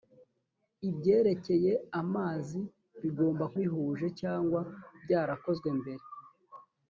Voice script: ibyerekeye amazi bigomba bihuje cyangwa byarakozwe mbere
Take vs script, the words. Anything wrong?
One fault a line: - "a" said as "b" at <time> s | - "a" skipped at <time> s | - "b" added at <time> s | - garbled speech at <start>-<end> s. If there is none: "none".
none